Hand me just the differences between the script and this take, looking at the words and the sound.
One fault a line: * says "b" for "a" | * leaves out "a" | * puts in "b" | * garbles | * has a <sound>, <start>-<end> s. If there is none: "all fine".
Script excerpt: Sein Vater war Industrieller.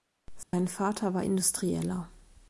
* has a dropout, 0.4-0.5 s